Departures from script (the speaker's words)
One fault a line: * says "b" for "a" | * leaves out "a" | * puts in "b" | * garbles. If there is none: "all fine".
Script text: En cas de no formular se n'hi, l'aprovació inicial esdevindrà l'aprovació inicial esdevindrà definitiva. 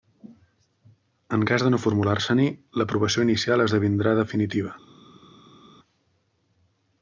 * leaves out "l'aprovació inicial esdevindrà"